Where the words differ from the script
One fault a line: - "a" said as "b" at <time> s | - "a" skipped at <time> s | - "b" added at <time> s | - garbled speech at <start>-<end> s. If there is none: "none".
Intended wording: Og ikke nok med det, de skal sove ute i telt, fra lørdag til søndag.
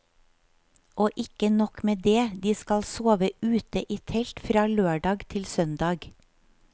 none